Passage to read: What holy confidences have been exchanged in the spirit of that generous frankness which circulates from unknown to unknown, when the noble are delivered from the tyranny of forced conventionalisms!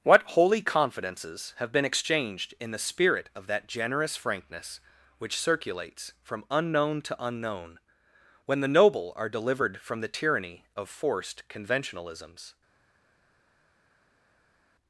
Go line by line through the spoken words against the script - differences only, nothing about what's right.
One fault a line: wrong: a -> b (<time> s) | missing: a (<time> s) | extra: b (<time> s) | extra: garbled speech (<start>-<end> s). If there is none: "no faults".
no faults